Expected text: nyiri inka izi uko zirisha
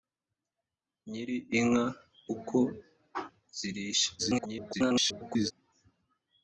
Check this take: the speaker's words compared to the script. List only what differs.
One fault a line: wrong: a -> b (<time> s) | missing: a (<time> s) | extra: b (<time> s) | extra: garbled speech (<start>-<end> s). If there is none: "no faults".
missing: izi (1.9 s)
extra: garbled speech (4.2-5.5 s)